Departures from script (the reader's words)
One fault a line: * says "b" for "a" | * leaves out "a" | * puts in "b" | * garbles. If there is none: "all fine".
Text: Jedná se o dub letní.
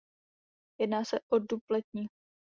all fine